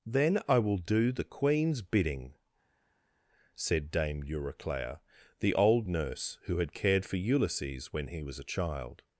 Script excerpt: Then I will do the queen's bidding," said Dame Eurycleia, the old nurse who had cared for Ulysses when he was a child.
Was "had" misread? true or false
false